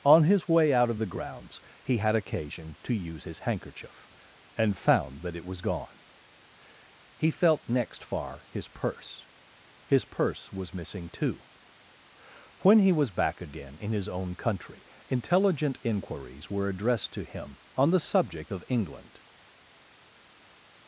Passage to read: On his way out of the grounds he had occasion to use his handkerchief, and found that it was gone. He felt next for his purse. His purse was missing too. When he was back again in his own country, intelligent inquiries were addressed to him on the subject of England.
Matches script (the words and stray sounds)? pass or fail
fail